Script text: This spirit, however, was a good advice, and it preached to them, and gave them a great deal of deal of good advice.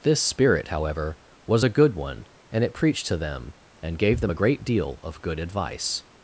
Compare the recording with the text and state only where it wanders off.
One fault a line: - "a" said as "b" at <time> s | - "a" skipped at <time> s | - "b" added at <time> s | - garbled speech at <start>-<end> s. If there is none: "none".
- "advice" said as "one" at 1.9 s
- "deal of" skipped at 5.2 s